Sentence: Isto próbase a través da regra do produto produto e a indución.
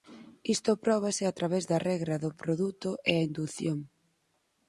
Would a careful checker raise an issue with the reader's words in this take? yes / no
yes